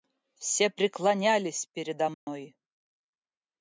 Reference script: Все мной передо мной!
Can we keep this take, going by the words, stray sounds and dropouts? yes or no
no